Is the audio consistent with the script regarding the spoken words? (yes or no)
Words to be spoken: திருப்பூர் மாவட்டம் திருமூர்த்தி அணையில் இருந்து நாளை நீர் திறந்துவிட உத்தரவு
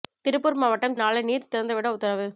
no